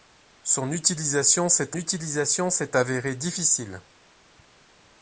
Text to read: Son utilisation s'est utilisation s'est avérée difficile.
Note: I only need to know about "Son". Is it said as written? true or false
true